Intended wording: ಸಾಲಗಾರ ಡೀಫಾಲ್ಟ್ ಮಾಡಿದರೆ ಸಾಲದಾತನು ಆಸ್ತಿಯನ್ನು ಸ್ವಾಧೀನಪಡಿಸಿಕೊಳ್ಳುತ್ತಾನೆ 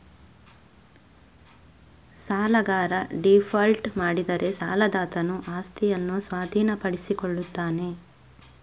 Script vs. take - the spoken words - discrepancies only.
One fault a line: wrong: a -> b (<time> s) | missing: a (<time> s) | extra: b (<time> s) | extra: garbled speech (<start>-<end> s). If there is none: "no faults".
no faults